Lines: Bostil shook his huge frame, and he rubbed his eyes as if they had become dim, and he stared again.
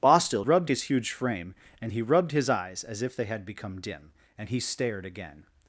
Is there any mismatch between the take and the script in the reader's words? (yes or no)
yes